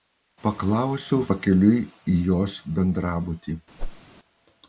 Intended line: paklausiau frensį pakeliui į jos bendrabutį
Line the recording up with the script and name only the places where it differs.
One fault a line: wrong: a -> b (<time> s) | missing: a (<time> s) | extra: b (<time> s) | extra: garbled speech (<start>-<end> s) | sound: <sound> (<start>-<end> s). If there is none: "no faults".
missing: frensį (1.2 s)
sound: whoosh (3.8-4.0 s)